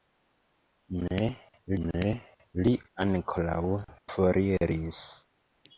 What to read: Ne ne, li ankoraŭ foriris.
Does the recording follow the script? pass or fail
pass